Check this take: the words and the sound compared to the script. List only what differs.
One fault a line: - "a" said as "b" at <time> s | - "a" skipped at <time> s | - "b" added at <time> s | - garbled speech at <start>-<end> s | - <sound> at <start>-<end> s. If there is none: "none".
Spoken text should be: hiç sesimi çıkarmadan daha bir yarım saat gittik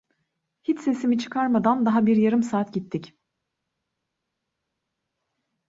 none